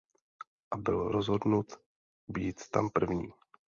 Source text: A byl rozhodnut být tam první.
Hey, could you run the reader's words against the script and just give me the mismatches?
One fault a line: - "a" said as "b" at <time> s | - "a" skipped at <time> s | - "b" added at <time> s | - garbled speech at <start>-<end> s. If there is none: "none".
none